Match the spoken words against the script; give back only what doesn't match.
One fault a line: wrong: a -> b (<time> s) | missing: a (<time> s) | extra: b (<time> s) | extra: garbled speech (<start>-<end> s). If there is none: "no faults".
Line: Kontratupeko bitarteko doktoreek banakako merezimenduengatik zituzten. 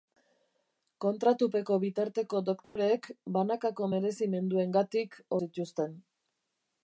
no faults